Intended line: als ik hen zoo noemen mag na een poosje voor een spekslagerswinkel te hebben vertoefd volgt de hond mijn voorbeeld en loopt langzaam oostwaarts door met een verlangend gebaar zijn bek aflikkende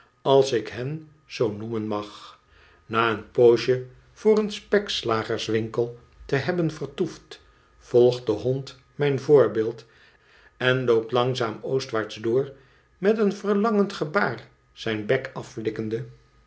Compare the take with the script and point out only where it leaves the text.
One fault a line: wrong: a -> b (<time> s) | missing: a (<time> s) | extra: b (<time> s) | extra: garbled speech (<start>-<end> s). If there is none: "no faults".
no faults